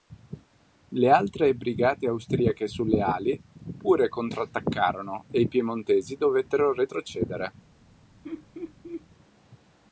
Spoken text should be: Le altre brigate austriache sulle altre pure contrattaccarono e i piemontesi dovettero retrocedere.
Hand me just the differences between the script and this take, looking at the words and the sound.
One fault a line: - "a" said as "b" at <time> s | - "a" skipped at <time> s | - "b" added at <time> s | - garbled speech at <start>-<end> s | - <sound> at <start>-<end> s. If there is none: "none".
- "altre" said as "ali" at 3.0 s
- laugh at 8.2-9.1 s